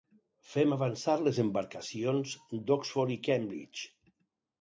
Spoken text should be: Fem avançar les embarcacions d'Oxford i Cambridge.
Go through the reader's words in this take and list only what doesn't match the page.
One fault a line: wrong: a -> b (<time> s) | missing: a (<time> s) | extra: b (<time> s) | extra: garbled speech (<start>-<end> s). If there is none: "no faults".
no faults